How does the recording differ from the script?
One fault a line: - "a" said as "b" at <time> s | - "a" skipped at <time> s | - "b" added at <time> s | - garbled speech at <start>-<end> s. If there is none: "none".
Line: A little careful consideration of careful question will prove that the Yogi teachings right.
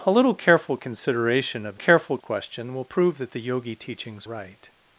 none